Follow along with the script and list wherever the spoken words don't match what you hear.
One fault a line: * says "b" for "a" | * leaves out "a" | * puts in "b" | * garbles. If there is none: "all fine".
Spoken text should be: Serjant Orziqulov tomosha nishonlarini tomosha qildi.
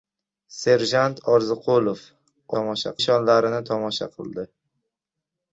all fine